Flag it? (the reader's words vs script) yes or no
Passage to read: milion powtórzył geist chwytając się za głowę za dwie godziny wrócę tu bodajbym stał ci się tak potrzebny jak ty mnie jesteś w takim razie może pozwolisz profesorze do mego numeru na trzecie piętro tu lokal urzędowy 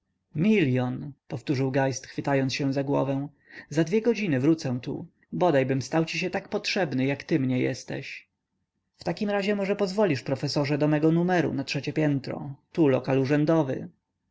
no